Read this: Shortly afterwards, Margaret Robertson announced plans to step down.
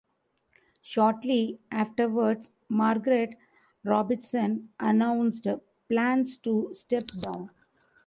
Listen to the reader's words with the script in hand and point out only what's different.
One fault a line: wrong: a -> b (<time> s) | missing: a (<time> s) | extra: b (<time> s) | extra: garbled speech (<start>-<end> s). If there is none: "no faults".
no faults